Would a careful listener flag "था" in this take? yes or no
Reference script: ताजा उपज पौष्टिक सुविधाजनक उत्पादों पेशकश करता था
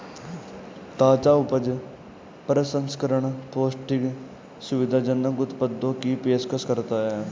yes